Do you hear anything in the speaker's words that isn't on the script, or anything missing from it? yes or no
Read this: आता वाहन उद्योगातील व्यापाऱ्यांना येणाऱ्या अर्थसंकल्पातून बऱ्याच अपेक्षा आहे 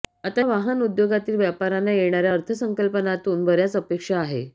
no